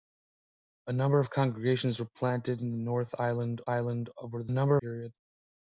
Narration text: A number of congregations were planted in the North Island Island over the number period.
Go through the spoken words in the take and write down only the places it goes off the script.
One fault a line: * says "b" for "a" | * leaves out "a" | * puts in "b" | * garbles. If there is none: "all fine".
all fine